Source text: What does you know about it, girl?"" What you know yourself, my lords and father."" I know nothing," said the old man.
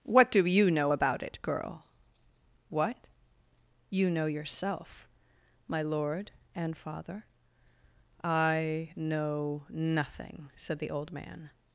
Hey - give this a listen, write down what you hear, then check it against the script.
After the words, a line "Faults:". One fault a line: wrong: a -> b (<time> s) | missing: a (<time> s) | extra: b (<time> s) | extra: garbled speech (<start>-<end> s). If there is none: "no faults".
What do you know about it, girl?"" What you know yourself, my lord and father."" I know nothing," said the old man.
Faults:
wrong: does -> do (0.3 s)
wrong: lords -> lord (5.8 s)